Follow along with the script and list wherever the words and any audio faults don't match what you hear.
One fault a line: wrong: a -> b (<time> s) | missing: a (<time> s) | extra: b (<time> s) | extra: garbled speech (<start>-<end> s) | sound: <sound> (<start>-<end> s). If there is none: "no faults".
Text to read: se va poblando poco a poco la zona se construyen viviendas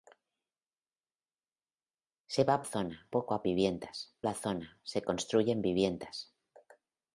wrong: poblando -> zona (2.6 s)
wrong: poco -> viviendas (3.4 s)